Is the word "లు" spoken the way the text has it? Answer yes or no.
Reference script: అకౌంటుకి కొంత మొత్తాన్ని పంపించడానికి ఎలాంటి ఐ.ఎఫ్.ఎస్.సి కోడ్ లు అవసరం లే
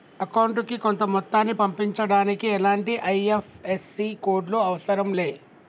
yes